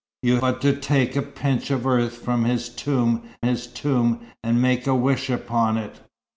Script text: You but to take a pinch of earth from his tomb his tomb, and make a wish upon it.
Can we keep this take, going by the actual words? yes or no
yes